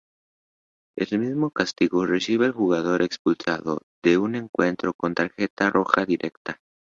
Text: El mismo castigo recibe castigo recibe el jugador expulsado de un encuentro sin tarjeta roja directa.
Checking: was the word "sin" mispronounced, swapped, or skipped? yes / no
yes